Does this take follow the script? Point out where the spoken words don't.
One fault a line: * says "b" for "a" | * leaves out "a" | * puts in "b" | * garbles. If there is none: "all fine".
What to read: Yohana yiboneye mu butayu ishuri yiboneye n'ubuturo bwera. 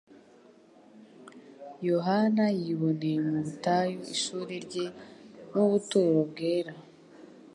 * says "rye" for "yiboneye"